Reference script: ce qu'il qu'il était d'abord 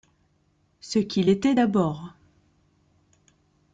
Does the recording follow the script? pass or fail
fail